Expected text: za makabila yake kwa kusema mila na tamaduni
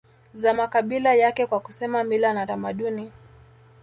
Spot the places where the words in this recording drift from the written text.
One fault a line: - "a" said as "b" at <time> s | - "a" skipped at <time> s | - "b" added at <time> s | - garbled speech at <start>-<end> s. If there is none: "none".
none